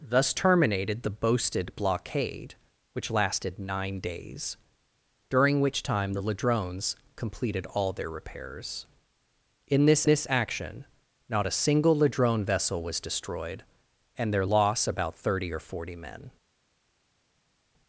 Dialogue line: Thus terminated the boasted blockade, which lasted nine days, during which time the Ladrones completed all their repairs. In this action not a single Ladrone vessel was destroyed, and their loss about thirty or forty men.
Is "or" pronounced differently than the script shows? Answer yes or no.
no